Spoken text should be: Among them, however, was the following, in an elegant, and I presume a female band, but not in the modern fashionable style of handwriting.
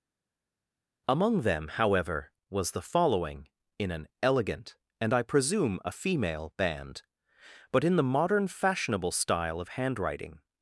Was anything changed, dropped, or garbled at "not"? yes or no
yes